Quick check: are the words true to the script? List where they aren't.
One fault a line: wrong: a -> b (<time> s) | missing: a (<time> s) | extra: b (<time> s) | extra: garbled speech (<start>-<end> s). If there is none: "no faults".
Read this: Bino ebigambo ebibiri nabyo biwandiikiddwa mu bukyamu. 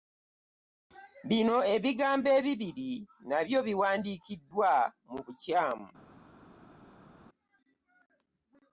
no faults